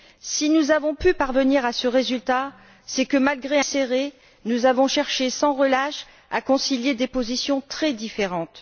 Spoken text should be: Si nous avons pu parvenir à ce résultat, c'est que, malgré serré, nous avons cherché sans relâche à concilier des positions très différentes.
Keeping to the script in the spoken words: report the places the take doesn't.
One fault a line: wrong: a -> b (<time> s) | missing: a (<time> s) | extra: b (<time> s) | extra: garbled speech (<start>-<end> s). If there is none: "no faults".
no faults